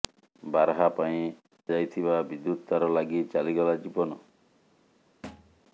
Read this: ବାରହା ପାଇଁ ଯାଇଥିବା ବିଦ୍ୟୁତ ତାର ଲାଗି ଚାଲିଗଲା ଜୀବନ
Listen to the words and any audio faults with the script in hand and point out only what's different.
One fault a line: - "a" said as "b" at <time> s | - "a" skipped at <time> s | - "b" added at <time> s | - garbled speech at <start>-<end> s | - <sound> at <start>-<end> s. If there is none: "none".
- thud at 5.2-5.6 s